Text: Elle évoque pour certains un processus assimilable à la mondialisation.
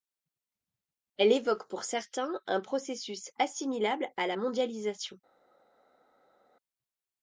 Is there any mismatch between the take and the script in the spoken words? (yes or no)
no